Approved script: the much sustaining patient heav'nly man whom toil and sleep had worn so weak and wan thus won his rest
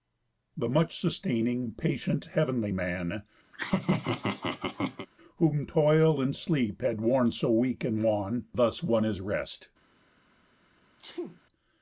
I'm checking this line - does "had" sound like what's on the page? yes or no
yes